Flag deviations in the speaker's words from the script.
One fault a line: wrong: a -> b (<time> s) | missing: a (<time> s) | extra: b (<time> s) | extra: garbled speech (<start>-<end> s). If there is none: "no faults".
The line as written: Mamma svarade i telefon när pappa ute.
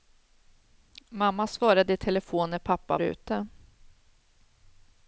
no faults